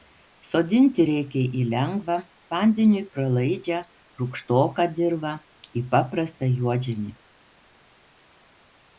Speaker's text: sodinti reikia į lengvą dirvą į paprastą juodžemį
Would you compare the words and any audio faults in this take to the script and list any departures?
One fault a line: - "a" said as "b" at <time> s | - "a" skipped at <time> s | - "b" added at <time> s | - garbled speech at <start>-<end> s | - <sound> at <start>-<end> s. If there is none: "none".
- "vandeniui pralaidžią rūgštoką" added at 2.6 s